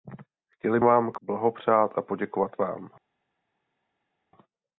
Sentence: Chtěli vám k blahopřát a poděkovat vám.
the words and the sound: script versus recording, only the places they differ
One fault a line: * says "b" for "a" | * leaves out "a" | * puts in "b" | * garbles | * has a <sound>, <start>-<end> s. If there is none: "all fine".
all fine